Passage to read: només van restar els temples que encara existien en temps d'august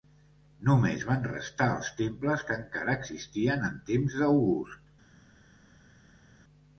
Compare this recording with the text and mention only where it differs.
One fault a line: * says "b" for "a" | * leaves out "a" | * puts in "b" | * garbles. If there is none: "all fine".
all fine